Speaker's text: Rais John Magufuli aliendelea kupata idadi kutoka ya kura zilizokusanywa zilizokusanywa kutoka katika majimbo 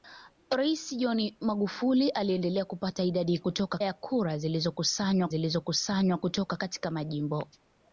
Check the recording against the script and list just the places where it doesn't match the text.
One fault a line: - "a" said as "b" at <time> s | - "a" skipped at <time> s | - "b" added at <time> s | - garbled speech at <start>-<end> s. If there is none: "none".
none